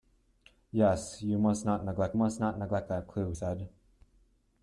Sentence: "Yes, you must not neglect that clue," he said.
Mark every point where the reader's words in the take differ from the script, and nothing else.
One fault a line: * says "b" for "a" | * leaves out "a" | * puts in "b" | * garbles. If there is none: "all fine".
* puts in "must not neglect"
* leaves out "he"